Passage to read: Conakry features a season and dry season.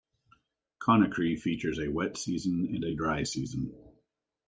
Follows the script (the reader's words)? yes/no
no